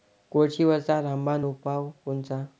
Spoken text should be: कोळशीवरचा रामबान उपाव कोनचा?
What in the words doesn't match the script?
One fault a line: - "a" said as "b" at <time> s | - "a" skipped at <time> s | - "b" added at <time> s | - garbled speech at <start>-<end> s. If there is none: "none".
none